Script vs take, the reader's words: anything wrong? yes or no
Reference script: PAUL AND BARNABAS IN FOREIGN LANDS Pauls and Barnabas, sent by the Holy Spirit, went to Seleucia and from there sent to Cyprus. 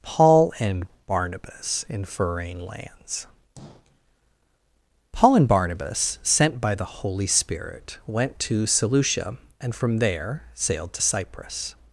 yes